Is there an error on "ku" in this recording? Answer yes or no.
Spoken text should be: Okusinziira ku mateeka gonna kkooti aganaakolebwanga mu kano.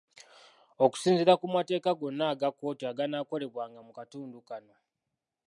no